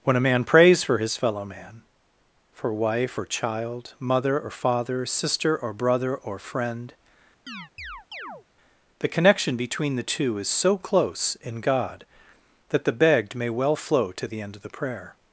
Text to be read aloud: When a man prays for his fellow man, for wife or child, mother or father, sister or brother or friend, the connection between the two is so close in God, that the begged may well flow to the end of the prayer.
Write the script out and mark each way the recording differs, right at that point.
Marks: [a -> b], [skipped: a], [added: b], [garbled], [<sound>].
When a man prays for his fellow man, for wife or child, mother or father, sister or brother or friend, [chirp] the connection between the two is so close in God, that the begged may well flow to the end of the prayer.